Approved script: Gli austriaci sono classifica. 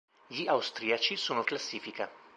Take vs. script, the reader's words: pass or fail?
pass